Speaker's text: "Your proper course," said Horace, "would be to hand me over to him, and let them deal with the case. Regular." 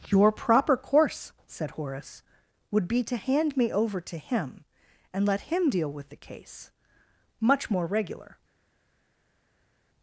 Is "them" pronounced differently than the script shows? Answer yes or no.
yes